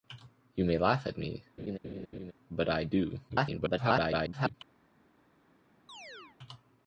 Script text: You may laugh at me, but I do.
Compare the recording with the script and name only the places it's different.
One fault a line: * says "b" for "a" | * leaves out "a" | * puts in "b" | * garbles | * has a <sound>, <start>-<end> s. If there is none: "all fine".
* has a laugh, 1.6-2.3 s
* garbles
* has a chirp, 5.9-6.4 s